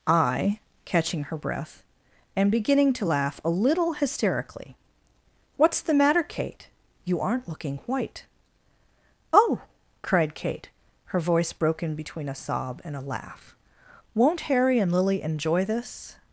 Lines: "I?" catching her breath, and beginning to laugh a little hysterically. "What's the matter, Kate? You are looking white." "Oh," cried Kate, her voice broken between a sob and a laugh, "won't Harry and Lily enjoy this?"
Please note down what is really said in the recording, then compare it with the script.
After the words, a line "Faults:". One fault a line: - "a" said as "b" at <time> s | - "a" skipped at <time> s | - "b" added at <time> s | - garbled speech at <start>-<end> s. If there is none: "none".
"I?" catching her breath, and beginning to laugh a little hysterically. "What's the matter, Kate? You aren't looking white." "Oh," cried Kate, her voice broken between a sob and a laugh, "won't Harry and Lily enjoy this?"
Faults:
- "are" said as "aren't" at 7.2 s